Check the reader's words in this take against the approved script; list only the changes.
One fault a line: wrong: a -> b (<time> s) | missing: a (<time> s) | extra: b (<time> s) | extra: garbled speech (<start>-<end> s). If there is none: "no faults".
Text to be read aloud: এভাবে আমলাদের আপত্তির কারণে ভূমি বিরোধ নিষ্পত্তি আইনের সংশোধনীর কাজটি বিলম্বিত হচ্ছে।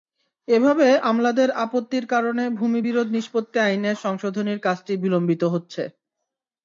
no faults